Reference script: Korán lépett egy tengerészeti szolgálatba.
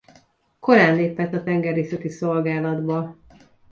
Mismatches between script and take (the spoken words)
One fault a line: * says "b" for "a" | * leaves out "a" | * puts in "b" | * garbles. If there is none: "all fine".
* says "a" for "egy"